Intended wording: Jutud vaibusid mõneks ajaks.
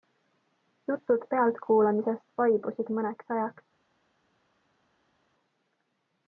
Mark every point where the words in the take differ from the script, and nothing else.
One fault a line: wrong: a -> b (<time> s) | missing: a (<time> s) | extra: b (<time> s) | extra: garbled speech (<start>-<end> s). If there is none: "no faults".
extra: pealtkuulamisest (1.3 s)